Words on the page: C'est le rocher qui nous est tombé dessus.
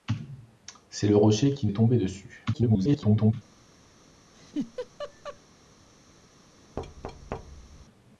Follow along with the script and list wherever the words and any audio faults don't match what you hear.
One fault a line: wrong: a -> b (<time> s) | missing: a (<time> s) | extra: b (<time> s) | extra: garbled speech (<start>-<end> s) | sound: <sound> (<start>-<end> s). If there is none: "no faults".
missing: nous (1.7 s)
extra: garbled speech (2.5-3.3 s)
sound: laugh (4.3-5.4 s)
sound: thud (6.8-7.9 s)